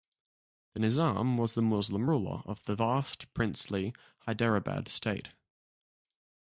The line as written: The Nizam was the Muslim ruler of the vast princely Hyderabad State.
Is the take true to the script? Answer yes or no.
yes